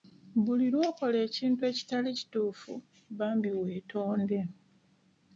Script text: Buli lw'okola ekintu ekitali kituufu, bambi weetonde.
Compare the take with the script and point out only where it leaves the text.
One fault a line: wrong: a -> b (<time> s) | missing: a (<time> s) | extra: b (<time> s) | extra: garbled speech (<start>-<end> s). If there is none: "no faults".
no faults